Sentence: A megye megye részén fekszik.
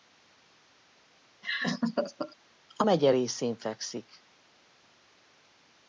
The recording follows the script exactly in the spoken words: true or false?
false